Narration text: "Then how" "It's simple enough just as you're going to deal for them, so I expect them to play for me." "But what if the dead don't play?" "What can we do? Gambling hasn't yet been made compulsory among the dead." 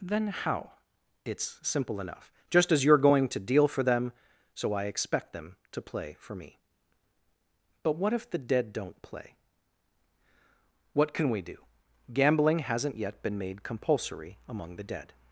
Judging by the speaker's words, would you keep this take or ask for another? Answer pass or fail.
pass